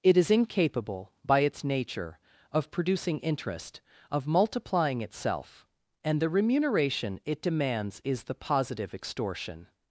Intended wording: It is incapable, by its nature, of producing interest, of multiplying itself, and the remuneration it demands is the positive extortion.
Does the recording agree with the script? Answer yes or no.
yes